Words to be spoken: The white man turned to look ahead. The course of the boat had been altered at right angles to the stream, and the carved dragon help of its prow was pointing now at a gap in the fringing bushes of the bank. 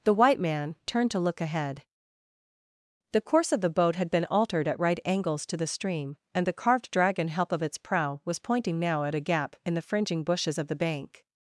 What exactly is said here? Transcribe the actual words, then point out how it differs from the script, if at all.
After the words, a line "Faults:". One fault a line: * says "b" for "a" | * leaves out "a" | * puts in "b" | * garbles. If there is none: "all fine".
The white man turned to look ahead. The course of the boat had been altered at right angles to the stream, and the carved dragon help of its prow was pointing now at a gap in the fringing bushes of the bank.
Faults:
all fine